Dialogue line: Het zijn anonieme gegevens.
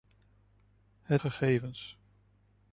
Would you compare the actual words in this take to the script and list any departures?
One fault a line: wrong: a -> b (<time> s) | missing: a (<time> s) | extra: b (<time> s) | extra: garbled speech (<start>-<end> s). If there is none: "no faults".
missing: zijn anonieme (1.2 s)